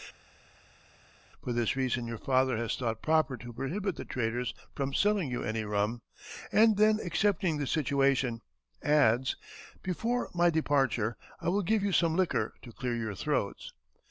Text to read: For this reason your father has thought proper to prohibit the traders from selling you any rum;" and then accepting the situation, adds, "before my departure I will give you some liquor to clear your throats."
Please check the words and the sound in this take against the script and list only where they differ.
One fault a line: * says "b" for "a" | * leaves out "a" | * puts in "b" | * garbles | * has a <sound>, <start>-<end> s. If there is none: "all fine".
all fine